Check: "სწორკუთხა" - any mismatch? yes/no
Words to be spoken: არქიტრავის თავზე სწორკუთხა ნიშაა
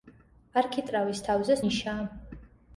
yes